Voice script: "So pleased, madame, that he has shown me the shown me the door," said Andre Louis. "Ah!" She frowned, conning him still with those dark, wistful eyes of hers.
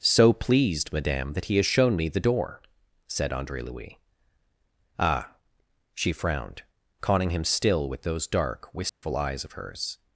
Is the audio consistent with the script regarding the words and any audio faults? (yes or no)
no